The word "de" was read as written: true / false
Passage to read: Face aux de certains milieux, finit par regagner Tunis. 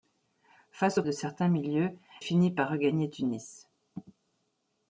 true